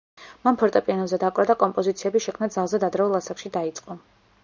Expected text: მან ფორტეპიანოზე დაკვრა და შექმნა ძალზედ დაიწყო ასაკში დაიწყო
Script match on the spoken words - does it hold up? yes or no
no